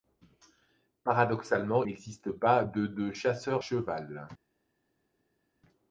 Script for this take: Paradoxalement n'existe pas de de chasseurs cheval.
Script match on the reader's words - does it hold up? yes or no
yes